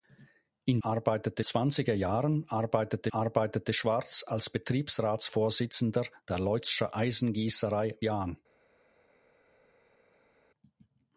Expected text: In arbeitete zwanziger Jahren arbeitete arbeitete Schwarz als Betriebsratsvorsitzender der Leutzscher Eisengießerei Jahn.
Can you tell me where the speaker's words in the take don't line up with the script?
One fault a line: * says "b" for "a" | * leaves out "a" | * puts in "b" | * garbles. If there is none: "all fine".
all fine